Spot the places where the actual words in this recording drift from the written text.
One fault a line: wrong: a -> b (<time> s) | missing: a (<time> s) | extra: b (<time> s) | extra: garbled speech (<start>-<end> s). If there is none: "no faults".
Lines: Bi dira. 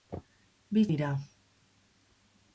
no faults